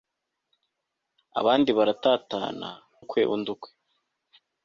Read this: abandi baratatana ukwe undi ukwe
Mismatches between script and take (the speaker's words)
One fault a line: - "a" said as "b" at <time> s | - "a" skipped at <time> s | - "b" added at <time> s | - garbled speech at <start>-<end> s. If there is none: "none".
none